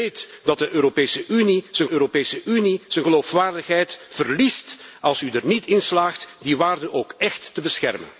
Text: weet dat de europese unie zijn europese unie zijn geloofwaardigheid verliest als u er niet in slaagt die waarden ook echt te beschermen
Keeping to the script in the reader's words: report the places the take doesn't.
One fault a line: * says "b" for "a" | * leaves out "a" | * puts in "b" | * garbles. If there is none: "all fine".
all fine